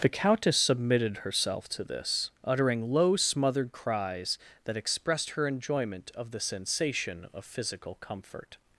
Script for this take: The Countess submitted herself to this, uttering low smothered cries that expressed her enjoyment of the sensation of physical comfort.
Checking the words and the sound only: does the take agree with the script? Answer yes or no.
yes